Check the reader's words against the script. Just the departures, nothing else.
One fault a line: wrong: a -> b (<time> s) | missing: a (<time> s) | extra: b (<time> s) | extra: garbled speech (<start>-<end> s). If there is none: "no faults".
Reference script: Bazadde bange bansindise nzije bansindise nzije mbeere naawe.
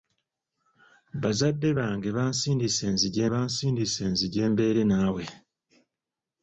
no faults